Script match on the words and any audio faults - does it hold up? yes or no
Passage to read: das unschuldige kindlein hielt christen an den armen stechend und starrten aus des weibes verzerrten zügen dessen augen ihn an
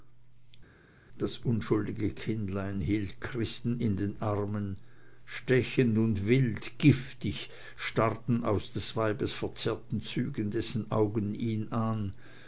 no